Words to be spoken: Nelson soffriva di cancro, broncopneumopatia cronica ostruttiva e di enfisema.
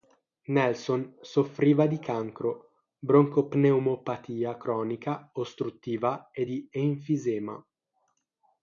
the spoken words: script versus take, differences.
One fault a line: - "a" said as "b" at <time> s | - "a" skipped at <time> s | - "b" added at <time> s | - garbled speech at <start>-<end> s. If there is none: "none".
none